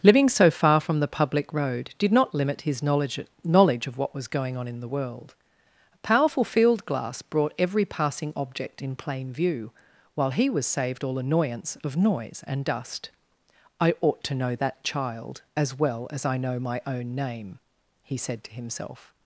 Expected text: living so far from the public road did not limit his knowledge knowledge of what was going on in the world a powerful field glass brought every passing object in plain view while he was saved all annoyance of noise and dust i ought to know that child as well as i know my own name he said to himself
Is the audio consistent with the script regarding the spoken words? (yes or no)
yes